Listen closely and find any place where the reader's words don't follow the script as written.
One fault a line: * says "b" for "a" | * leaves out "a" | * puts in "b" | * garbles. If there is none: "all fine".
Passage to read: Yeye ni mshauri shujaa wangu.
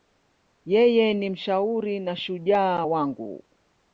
* puts in "na"